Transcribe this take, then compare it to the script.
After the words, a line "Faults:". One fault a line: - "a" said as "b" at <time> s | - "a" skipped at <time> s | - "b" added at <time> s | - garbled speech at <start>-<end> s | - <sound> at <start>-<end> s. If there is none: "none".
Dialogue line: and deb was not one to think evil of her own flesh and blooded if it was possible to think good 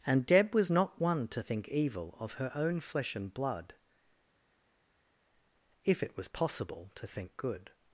and deb was not one to think evil of her own flesh and blood if it was possible to think good
Faults:
- "blooded" said as "blood" at 3.3 s